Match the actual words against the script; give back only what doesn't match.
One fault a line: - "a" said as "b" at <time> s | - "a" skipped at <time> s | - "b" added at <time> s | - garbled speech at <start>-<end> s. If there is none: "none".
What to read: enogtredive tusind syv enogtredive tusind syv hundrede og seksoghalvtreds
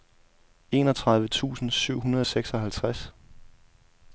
- "enogtredive tusind syv" skipped at 2.0 s